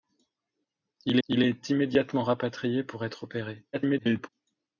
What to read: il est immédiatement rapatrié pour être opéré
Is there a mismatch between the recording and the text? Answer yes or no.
yes